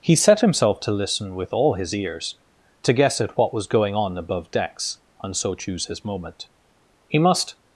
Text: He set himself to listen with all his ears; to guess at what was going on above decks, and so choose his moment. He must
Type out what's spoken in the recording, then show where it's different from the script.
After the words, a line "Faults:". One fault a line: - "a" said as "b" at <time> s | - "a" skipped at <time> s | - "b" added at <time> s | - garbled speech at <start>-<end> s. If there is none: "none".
He set himself to listen with all his ears; to guess at what was going on above decks, and so choose his moment. He must
Faults:
none